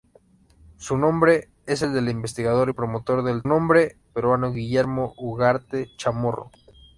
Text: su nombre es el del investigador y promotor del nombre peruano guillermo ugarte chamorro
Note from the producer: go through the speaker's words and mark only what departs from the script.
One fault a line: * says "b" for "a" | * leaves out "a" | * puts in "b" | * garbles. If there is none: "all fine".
all fine